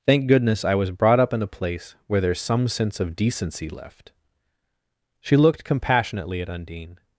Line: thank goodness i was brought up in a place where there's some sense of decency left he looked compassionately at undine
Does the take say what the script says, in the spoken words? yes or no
no